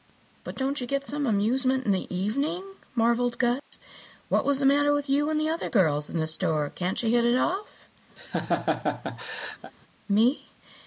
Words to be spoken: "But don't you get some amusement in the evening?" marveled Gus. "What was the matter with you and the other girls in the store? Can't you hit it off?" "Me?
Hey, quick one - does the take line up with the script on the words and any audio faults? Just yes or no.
no